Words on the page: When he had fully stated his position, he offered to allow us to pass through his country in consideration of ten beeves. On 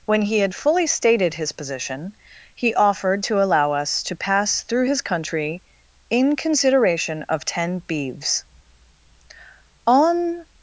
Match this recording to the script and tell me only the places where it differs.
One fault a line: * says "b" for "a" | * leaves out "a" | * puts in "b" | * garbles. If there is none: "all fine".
all fine